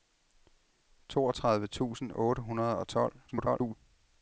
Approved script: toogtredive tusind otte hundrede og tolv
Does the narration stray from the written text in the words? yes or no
yes